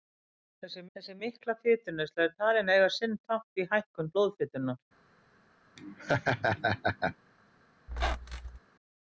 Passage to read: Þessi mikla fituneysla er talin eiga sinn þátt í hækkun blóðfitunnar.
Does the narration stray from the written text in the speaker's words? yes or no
yes